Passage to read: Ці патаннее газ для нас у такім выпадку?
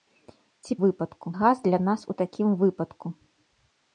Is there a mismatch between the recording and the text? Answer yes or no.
yes